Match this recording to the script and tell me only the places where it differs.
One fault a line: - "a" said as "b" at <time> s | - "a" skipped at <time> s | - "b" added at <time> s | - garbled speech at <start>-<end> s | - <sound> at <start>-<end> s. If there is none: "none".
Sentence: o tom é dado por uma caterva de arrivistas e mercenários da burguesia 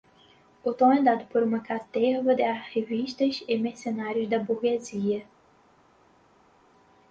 none